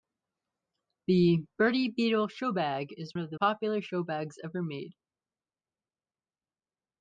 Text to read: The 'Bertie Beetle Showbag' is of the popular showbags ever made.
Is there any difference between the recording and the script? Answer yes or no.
no